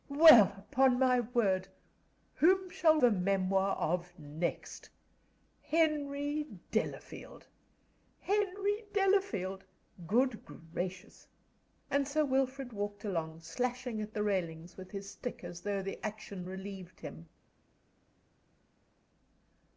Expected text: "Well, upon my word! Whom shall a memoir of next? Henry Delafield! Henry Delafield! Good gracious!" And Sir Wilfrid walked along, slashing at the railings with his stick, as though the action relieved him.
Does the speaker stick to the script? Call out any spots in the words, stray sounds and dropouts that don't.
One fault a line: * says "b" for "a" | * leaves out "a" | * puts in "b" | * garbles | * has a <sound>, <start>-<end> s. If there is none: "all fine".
all fine